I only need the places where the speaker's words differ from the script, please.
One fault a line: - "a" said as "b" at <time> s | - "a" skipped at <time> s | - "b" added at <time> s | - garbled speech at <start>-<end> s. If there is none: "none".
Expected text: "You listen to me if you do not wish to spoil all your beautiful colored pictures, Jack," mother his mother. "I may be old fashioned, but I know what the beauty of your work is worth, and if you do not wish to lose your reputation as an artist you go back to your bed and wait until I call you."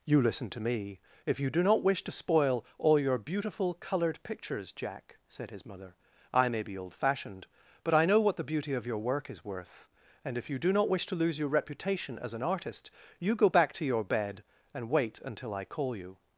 - "mother" said as "said" at 5.3 s